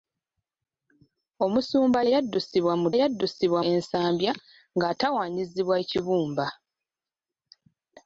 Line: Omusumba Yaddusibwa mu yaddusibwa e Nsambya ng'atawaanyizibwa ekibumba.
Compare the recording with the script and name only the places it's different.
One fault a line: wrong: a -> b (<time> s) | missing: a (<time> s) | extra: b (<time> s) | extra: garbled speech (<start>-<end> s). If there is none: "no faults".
no faults